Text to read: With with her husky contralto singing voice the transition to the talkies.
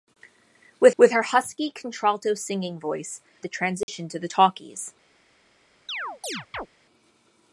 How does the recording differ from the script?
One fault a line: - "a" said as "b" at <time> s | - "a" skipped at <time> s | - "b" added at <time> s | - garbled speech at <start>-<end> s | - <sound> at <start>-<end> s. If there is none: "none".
- dropout at 3.8-3.9 s
- chirp at 5.9-6.7 s